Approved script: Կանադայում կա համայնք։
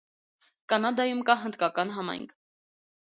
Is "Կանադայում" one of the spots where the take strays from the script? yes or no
no